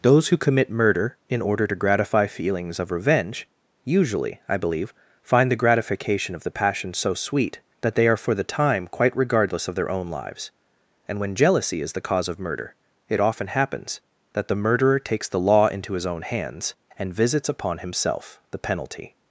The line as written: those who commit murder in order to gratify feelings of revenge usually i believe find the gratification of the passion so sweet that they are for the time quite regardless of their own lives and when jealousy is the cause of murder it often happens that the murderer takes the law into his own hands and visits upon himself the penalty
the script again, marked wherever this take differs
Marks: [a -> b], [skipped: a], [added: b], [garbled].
those who commit murder in order to gratify feelings of revenge usually i believe find the gratification of the passion so sweet that they are for the time quite regardless of their own lives and when jealousy is the cause of murder it often happens that the murderer takes the law into his own hands and visits upon himself the penalty